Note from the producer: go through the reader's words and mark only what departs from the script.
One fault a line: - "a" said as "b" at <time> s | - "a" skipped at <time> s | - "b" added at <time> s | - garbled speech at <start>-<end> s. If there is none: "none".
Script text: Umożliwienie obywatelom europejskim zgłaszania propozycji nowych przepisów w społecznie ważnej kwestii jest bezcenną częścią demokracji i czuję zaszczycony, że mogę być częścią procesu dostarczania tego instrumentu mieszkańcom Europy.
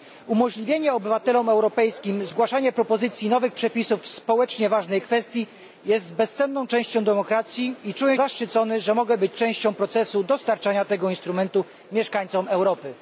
none